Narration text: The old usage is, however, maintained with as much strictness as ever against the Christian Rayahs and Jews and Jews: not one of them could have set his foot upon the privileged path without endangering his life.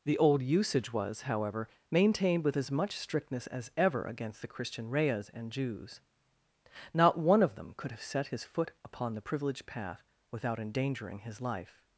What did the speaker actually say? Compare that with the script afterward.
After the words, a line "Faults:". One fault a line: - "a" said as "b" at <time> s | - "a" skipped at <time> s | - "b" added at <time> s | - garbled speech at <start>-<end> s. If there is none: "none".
The old usage was, however, maintained with as much strictness as ever against the Christian Rayahs and Jews: not one of them could have set his foot upon the privileged path without endangering his life.
Faults:
- "is" said as "was" at 0.9 s
- "and Jews" skipped at 6.0 s